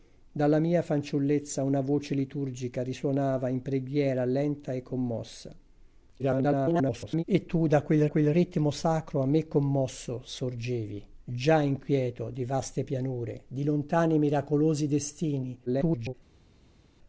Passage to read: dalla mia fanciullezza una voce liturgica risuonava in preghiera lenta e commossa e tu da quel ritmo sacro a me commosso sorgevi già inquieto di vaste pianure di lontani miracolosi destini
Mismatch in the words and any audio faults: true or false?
true